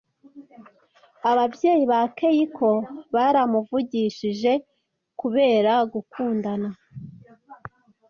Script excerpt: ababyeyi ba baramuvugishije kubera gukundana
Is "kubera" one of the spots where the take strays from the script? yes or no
no